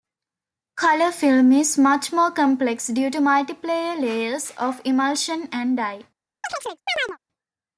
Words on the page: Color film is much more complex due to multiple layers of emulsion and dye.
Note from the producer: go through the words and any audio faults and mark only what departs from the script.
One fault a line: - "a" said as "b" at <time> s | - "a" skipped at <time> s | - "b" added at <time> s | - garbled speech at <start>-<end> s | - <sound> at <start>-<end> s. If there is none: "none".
- chirp at 6.4-7.2 s